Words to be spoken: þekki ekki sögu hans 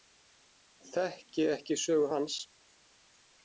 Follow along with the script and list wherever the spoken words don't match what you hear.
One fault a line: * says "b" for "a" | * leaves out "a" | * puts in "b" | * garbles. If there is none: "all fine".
all fine